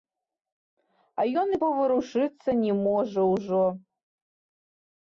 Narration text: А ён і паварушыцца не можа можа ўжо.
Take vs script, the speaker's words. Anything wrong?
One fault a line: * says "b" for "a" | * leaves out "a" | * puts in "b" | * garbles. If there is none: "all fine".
* leaves out "можа"